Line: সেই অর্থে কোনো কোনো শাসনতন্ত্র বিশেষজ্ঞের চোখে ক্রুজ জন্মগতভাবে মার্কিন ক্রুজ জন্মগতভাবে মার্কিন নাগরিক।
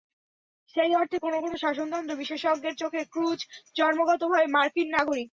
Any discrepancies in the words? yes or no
yes